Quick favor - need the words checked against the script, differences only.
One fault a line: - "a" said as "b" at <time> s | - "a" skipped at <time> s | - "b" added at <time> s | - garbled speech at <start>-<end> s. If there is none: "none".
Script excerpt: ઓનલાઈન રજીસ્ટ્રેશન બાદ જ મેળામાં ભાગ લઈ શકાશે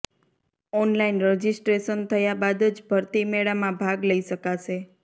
- "થયા" added at 2.1 s
- "ભરતી" added at 2.9 s